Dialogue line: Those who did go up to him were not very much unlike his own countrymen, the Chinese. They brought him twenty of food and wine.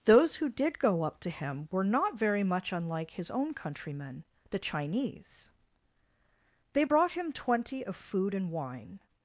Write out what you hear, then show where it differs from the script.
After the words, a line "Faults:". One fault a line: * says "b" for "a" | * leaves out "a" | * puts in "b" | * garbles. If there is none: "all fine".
Those who did go up to him were not very much unlike his own countrymen, the Chinese. They brought him twenty of food and wine.
Faults:
all fine